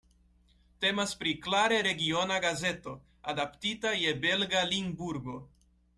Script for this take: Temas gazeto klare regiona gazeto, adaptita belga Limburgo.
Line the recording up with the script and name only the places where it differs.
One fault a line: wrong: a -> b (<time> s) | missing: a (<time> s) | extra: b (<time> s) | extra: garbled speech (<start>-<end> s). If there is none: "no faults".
wrong: gazeto -> pri (1.1 s)
extra: je (4.0 s)